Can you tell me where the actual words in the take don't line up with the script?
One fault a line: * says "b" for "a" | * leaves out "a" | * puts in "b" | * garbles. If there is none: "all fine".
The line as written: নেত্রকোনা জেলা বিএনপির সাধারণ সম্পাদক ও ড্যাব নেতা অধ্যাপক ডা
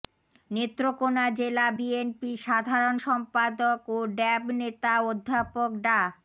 all fine